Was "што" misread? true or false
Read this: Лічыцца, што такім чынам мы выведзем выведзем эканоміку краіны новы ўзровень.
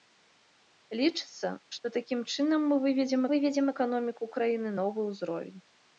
false